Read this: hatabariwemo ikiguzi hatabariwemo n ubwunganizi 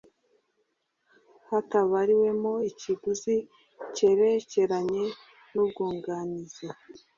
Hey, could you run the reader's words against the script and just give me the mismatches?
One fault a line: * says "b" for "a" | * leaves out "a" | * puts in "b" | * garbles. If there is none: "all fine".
* says "cyerekeranye" for "hatabariwemo"